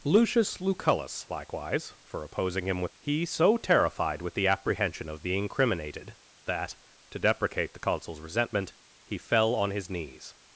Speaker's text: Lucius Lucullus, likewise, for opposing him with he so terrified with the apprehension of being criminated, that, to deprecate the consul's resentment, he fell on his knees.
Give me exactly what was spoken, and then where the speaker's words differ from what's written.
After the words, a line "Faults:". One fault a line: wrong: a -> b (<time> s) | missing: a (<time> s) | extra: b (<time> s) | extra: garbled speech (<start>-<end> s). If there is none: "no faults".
Lucius Lucullus, likewise, for opposing him with he so terrified with the apprehension of being criminated, that, to deprecate the consul's resentment, he fell on his knees.
Faults:
no faults